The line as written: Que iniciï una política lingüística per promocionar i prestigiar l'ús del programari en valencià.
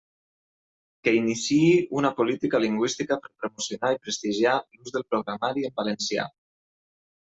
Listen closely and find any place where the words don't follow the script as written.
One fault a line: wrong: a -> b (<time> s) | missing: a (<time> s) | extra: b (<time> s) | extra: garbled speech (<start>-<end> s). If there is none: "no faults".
no faults